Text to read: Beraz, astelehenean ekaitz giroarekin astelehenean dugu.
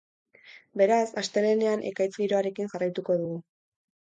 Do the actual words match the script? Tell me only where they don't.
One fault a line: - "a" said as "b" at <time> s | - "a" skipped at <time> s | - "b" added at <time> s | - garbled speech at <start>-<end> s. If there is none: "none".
- "astelehenean" said as "jarraituko" at 2.7 s